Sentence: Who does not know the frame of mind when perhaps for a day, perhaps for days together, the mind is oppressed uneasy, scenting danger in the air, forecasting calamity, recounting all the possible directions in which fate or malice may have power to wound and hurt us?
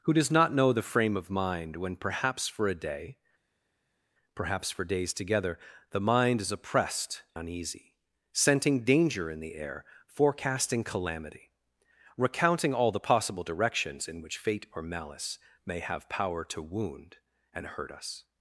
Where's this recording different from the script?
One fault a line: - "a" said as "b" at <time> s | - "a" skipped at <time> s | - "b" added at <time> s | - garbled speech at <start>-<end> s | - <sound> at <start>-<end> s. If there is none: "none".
none